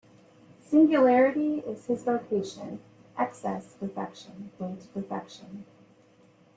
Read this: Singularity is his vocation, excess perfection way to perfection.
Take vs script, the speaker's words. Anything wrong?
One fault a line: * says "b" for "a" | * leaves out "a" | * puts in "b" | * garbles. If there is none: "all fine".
all fine